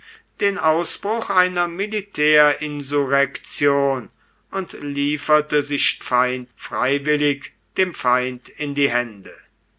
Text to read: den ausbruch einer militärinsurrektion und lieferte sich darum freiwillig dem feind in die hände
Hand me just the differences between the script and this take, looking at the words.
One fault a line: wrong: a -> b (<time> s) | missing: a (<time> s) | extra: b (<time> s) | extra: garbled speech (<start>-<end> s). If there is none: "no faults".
wrong: darum -> feind (6.0 s)